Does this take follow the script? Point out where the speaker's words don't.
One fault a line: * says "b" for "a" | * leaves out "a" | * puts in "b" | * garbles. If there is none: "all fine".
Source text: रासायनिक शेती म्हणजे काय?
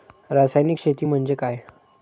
all fine